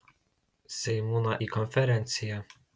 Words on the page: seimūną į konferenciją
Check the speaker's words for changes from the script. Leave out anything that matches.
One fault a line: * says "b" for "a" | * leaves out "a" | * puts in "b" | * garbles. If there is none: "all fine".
all fine